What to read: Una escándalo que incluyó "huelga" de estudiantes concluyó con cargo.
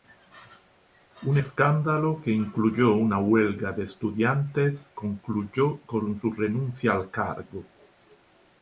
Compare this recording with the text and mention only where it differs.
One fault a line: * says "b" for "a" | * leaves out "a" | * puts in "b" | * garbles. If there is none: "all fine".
* says "Un" for "Una"
* puts in "una"
* puts in "su renuncia al"